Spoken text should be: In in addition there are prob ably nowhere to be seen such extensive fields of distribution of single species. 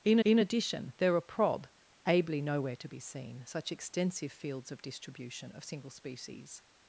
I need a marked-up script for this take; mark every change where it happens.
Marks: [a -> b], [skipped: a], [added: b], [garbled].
In in addition there are prob ably nowhere to be seen such extensive fields of distribution of single species.